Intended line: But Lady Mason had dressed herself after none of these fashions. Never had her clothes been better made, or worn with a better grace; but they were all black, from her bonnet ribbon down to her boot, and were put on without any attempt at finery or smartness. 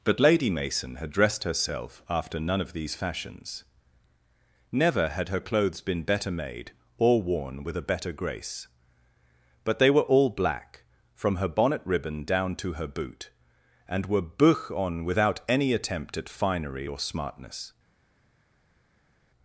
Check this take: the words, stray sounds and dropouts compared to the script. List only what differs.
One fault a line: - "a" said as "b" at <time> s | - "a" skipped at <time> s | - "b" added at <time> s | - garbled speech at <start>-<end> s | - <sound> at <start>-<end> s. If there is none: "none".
- "put" said as "buch" at 14.2 s